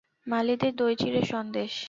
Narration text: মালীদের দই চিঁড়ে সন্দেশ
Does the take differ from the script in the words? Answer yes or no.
no